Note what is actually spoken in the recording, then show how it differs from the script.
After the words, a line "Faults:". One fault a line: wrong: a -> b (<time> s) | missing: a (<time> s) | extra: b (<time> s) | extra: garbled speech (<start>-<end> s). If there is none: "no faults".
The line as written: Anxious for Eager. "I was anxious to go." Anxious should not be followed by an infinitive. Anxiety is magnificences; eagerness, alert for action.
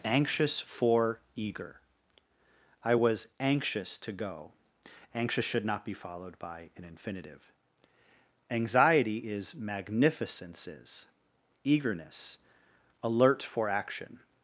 Anxious for Eager. "I was anxious to go." Anxious should not be followed by an infinitive. Anxiety is magnificences; eagerness, alert for action.
Faults:
no faults